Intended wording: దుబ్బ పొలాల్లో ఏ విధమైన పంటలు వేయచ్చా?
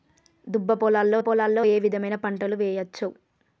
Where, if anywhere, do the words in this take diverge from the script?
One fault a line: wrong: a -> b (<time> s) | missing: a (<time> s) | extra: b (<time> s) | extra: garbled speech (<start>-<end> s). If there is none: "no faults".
extra: పొలాల్లో (1.2 s)